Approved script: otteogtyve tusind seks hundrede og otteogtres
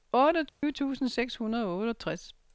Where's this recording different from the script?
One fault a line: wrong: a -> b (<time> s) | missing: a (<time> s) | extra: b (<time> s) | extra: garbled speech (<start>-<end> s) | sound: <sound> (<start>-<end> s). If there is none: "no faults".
sound: dropout (0.5-0.6 s)